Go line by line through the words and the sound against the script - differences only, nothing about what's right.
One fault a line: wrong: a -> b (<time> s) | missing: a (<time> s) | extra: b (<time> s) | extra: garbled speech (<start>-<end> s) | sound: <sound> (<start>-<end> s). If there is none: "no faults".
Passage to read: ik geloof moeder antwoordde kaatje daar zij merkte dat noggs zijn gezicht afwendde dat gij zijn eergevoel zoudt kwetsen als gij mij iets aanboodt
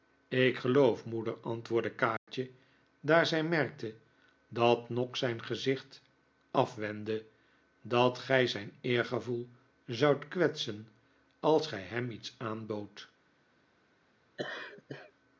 sound: dropout (2.2-2.3 s)
wrong: mij -> hem (11.8 s)
sound: laugh (14.4-15.1 s)